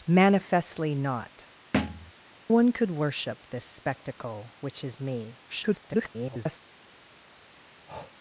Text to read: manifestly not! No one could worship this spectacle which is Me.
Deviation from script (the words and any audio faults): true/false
true